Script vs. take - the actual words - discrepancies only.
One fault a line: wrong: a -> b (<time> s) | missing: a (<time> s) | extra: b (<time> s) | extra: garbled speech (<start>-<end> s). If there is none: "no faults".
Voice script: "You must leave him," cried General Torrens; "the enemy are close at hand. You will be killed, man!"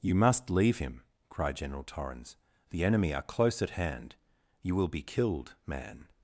no faults